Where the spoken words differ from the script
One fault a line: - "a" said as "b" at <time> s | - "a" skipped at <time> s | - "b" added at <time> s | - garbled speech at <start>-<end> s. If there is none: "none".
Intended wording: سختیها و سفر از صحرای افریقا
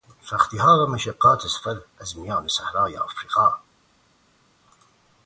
- "مشقات" added at 0.9 s
- "میان" added at 2.2 s